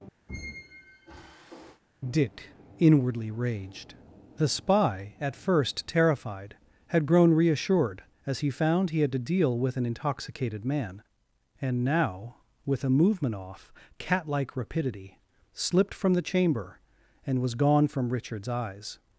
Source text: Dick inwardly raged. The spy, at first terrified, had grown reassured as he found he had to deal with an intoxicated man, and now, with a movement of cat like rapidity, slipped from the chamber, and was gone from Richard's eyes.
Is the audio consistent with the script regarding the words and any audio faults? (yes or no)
no